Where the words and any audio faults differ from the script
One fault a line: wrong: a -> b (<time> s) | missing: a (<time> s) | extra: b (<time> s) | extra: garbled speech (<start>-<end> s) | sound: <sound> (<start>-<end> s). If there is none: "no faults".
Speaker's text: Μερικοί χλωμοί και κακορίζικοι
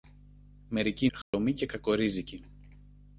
sound: dropout (1.2-1.3 s)